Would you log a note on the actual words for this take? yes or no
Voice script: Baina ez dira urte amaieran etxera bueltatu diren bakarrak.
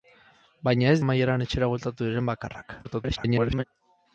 yes